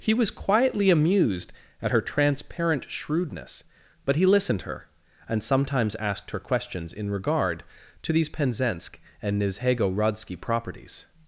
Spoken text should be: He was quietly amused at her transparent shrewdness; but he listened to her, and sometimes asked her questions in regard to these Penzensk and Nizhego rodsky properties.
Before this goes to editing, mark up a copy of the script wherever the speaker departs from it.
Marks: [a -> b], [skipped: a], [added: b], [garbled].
He was quietly amused at her transparent shrewdness; but he listened [skipped: to] her, and sometimes asked her questions in regard to these Penzensk and Nizhego rodsky properties.